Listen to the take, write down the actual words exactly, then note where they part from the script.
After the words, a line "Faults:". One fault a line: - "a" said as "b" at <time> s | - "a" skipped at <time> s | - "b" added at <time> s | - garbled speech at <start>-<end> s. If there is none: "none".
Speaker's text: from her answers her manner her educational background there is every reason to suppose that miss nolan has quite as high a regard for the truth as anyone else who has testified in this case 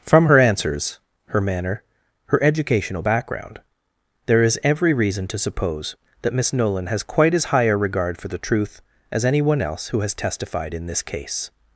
from her answers her manner her educational background there is every reason to suppose that miss nolan has quite as high a regard for the truth as anyone else who has testified in this case
Faults:
none